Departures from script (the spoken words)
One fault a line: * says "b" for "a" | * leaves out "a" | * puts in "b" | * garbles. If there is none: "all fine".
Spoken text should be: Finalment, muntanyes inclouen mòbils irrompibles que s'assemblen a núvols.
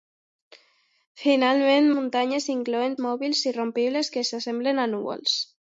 all fine